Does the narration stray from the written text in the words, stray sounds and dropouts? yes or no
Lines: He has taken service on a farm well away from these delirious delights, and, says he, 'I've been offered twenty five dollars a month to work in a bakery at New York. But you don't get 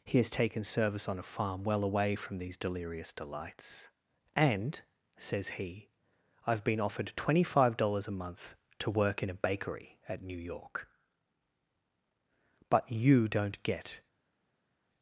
no